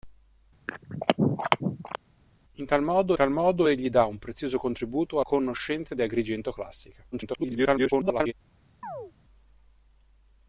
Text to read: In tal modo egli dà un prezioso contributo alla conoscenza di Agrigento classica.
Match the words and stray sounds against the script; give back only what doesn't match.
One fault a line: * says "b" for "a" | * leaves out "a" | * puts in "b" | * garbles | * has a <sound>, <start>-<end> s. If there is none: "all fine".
* has a throat clearing, 0.7-2.0 s
* puts in "tal modo"
* leaves out "alla"
* garbles
* has a chirp, 8.8-9.1 s